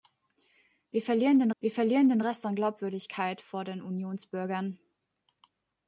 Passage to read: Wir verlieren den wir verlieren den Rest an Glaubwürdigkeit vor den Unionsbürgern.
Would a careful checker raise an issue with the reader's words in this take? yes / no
no